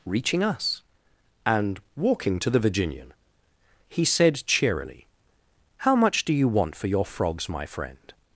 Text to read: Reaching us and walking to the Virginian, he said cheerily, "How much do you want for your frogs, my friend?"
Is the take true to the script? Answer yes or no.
yes